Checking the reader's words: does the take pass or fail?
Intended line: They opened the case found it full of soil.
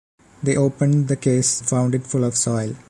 pass